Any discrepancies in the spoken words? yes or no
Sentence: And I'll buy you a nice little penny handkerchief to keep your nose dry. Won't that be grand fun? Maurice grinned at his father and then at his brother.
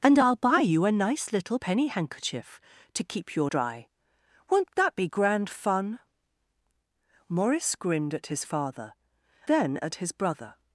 yes